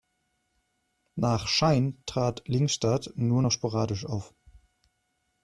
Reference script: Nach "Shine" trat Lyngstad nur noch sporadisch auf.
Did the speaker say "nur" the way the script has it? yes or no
yes